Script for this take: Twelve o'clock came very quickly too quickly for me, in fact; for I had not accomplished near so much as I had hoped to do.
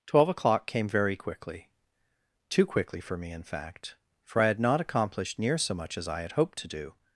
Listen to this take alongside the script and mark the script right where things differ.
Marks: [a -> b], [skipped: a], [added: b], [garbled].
Twelve o'clock came very quickly too quickly for me, in fact; for I had not accomplished near so much as I had hoped to do.